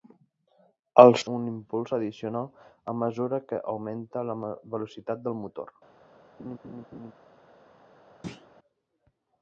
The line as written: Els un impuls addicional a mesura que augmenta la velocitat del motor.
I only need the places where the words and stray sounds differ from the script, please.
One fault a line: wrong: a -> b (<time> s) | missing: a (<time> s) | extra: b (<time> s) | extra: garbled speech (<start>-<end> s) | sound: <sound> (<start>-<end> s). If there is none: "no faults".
sound: laugh (6.4-7.1 s)
sound: thud (8.2-8.5 s)